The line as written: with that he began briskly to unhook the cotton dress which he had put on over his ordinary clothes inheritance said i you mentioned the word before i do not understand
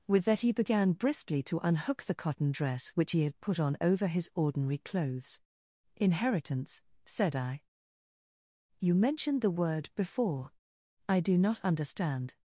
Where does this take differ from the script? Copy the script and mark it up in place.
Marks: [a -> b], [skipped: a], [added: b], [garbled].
with that he began briskly to unhook the cotton dress which he had put on over his ordinary clothes inheritance said i you mentioned the word before i do not understand